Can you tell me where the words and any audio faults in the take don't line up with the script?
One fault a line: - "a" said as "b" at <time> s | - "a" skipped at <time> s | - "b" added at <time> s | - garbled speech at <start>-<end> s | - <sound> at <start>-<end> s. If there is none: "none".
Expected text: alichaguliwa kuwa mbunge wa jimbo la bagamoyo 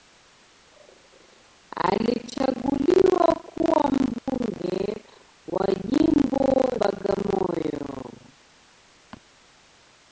- dropout at 4.2-4.3 s
- "la" skipped at 6.7 s